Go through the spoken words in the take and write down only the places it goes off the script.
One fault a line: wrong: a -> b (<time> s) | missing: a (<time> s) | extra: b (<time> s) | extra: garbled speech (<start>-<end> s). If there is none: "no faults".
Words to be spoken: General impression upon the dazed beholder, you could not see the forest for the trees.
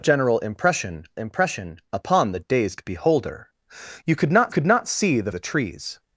extra: impression (1.1 s)
extra: could not (4.5 s)
missing: forest for (5.3 s)